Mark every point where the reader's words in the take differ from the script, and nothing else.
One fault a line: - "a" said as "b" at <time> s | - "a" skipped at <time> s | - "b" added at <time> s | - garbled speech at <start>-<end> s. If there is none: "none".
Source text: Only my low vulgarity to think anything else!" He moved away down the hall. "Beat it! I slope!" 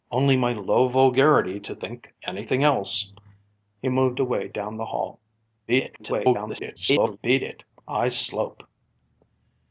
- garbled speech at 5.7-7.2 s